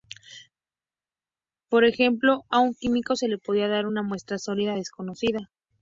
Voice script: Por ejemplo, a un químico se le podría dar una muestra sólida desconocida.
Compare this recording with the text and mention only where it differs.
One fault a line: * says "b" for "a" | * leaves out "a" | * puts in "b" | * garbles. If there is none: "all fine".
all fine